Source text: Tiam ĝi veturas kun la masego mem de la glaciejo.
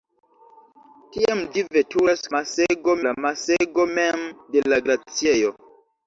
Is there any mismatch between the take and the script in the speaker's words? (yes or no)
yes